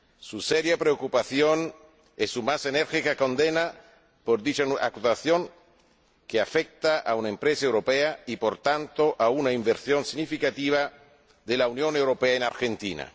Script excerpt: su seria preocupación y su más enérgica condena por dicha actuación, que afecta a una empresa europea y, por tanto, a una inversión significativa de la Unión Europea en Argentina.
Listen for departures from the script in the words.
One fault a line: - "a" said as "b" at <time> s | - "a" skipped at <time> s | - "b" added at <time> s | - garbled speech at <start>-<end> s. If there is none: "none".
none